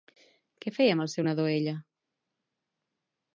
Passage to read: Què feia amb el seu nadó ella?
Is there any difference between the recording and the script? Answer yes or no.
no